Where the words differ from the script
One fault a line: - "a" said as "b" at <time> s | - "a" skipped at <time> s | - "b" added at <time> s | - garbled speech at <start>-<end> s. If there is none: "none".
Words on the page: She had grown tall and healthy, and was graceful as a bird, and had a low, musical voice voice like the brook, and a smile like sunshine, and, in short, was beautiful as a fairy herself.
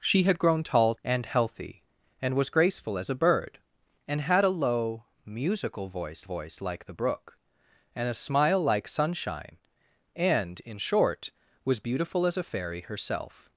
none